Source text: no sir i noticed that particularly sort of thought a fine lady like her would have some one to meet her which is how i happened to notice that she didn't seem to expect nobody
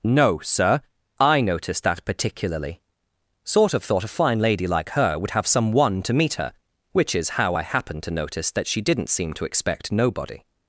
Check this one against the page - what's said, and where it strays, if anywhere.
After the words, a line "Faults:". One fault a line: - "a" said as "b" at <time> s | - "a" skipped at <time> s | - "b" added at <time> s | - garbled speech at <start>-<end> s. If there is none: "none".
no sir i noticed that particularly sort of thought a fine lady like her would have some one to meet her which is how i happened to notice that she didn't seem to expect nobody
Faults:
none